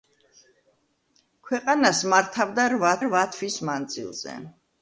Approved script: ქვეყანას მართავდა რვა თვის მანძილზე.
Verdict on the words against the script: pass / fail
fail